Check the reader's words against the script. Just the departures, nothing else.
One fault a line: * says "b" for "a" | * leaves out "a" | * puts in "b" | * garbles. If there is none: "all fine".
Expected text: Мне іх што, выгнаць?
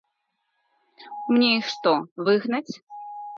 all fine